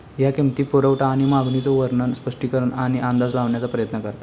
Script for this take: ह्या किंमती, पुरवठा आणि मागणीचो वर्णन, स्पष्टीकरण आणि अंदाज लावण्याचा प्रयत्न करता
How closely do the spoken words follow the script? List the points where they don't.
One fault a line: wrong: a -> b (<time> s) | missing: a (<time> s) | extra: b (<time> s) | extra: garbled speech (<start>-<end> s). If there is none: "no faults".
no faults